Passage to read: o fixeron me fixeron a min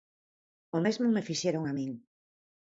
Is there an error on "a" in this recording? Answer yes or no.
no